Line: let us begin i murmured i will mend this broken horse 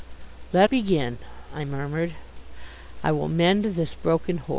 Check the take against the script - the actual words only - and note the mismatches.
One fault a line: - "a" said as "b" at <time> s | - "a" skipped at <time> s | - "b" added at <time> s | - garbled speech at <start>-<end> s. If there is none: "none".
- "us" skipped at 0.7 s